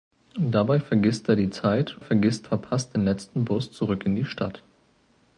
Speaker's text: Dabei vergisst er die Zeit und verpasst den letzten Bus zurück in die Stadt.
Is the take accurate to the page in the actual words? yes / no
no